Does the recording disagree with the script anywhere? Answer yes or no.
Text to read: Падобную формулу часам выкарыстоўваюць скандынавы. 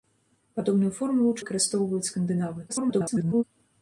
yes